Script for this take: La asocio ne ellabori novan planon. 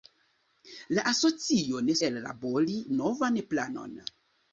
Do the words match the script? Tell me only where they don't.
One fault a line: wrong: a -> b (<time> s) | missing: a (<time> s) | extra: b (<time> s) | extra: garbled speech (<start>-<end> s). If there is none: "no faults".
no faults